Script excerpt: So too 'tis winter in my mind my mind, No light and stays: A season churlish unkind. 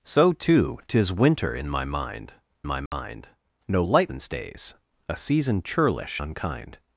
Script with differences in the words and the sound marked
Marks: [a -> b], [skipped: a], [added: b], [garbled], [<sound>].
So too 'tis winter in my mind my mind, [dropout] No light and stays: A season churlish unkind.